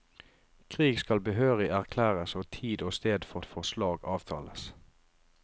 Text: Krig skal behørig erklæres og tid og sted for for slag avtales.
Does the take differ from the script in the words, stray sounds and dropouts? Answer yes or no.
no